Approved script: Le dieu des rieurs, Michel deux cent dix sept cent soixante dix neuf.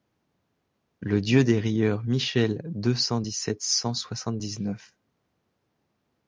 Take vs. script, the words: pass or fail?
pass